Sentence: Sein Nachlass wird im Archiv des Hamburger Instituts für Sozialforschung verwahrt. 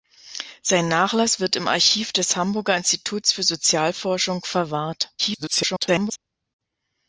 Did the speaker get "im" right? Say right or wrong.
right